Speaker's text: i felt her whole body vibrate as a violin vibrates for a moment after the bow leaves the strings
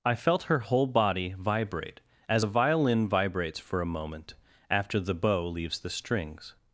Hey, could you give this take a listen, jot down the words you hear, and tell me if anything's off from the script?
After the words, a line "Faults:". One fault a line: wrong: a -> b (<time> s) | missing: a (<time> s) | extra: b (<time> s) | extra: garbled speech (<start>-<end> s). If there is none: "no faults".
i felt her whole body vibrate as a violin vibrates for a moment after the bow leaves the strings
Faults:
no faults